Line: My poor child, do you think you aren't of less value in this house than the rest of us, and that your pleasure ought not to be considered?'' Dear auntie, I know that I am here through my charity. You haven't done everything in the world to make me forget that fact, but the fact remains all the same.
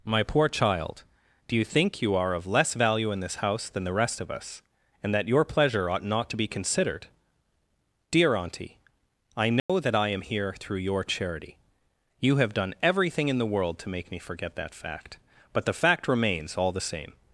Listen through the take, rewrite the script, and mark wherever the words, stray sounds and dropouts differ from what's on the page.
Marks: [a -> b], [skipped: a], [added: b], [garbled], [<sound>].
My poor child, do you think you [aren't -> are] of less value in this house than the rest of us, and that your pleasure ought not to be considered?'' Dear auntie, I know [dropout] that I am here through [my -> your] charity. You [haven't -> have] done everything in the world to make me forget that fact, but the fact remains all the same.